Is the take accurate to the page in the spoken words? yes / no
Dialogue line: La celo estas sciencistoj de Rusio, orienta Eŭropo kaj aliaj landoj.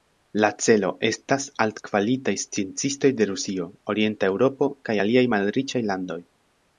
no